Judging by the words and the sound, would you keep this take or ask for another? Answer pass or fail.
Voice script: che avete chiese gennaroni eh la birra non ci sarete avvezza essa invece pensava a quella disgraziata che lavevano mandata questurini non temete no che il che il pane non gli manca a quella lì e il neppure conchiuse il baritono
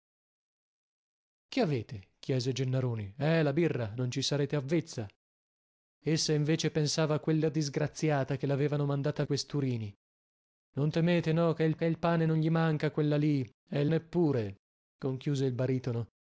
pass